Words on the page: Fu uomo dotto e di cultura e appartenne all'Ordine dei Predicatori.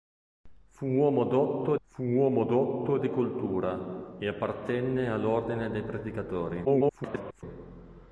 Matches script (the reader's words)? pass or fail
fail